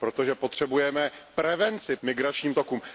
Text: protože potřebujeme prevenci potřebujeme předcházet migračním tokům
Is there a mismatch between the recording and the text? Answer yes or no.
yes